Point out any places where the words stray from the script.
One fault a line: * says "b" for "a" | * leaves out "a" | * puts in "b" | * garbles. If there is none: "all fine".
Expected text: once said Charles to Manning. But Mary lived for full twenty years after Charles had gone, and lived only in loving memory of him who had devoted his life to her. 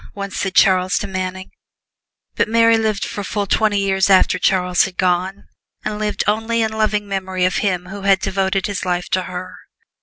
all fine